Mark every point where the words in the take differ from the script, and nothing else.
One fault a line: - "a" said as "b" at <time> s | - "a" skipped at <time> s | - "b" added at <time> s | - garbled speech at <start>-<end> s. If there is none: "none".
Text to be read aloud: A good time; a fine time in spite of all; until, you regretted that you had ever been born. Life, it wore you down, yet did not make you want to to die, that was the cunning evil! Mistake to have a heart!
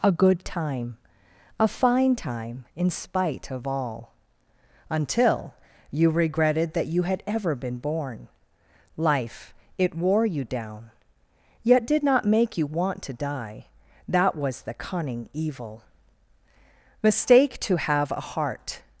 - "to" skipped at 13.1 s